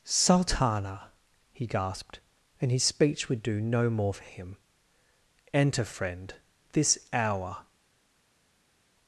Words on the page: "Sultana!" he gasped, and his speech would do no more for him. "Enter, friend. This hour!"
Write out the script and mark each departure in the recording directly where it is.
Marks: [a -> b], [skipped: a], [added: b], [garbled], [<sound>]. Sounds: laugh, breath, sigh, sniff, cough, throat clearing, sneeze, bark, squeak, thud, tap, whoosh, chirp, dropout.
"Sultana!" he gasped, and his speech would do no more for him. "Enter, friend. This hour!"